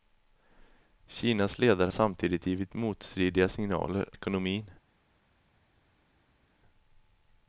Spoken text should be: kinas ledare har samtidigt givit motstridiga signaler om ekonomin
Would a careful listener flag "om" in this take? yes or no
yes